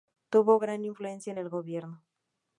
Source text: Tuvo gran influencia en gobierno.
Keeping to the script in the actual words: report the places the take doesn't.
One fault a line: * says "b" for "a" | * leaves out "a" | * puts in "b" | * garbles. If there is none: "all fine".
* puts in "el"